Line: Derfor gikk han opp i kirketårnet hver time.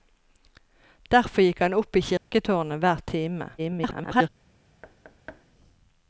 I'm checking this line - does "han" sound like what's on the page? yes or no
yes